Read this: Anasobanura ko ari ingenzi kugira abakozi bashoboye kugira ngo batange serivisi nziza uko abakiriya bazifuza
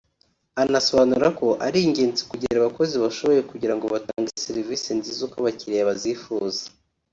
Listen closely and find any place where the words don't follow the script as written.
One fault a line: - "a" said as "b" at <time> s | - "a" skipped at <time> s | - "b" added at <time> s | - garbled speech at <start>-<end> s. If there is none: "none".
none